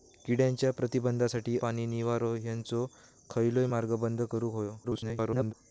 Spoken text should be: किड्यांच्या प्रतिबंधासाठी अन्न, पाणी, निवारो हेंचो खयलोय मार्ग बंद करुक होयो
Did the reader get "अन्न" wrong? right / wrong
wrong